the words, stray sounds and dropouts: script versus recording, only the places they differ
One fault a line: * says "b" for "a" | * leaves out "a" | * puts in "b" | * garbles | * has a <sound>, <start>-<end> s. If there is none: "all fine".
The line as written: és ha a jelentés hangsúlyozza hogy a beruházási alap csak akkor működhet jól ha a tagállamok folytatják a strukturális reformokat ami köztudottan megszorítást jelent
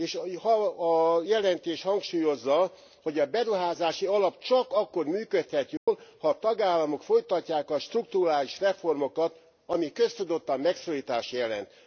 * has a dropout, 5.8-5.9 s